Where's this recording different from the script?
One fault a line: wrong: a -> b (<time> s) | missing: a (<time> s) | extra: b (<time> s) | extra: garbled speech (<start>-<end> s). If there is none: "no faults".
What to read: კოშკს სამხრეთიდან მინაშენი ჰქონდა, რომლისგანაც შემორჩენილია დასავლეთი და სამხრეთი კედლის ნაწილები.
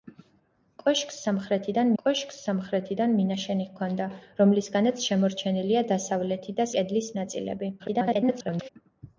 extra: კოშკს სამხრეთიდან (2.0 s)
missing: სამხრეთი (6.7 s)
extra: garbled speech (7.8-8.7 s)